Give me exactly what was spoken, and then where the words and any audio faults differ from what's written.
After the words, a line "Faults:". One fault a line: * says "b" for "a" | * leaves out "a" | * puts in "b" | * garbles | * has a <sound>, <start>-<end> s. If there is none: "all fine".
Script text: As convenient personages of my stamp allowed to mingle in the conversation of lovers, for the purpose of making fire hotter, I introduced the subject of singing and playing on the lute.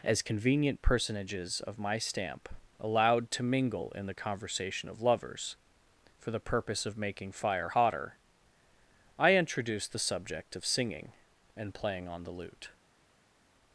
As convenient personages of my stamp allowed to mingle in the conversation of lovers, for the purpose of making fire hotter, I introduced the subject of singing and playing on the lute.
Faults:
all fine